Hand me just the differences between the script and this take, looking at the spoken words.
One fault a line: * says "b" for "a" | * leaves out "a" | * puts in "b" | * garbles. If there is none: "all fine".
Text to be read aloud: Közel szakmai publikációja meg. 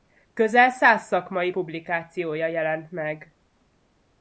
* puts in "száz"
* puts in "jelent"